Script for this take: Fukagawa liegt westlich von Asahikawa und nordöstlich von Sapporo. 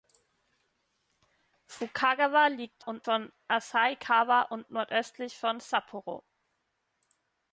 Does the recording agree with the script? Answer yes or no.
no